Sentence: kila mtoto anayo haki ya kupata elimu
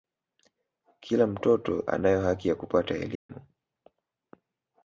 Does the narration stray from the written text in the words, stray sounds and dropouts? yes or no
yes